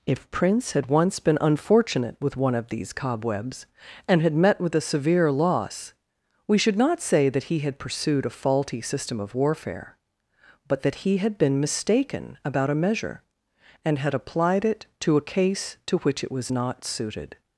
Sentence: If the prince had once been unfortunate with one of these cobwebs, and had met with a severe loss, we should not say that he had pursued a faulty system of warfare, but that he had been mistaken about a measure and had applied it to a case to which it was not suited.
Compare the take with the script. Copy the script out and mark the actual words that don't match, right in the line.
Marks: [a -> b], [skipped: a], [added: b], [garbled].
If [skipped: the] prince had once been unfortunate with one of these cobwebs, and had met with a severe loss, we should not say that he had pursued a faulty system of warfare, but that he had been mistaken about a measure and had applied it to a case to which it was not suited.